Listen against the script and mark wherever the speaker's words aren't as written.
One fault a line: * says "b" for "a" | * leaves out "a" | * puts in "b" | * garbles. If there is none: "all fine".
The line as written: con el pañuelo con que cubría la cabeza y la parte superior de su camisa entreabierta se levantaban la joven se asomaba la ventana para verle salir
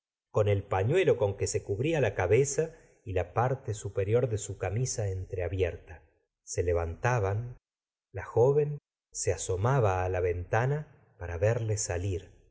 * puts in "se"